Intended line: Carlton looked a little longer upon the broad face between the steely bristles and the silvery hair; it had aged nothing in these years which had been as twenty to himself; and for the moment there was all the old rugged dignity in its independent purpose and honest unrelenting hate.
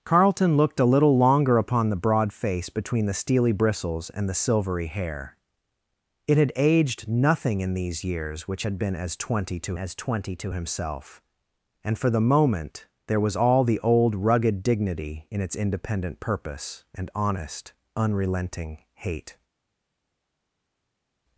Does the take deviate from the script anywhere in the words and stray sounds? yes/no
yes